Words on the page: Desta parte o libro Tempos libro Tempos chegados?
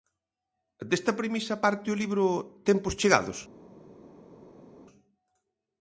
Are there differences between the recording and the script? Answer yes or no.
yes